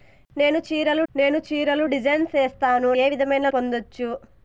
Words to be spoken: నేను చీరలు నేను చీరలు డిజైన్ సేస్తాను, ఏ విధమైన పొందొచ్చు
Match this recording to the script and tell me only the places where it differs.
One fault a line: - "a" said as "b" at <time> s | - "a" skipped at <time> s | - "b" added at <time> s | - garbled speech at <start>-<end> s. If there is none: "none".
none